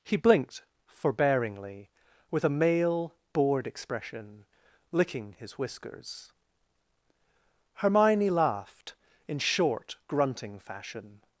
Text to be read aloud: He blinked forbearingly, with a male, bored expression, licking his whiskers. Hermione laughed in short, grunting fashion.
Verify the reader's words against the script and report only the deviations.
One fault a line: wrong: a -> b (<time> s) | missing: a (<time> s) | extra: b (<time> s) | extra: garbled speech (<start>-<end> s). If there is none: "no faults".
no faults